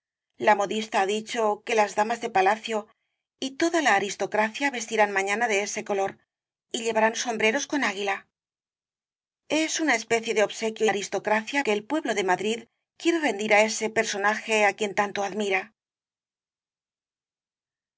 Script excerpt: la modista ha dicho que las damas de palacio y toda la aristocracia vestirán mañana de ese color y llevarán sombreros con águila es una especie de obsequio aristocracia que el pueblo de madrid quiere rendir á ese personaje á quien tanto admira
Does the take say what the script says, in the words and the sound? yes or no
yes